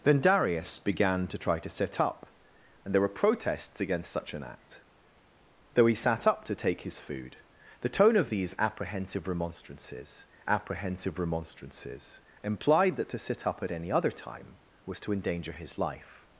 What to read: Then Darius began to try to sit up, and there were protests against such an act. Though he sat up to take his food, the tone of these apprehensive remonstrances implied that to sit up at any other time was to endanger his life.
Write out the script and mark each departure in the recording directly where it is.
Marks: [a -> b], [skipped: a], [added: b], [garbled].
Then Darius began to try to sit up, and there were protests against such an act. Though he sat up to take his food, the tone of these apprehensive remonstrances [added: apprehensive remonstrances] implied that to sit up at any other time was to endanger his life.